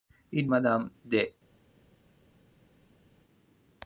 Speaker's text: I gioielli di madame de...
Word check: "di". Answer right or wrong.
wrong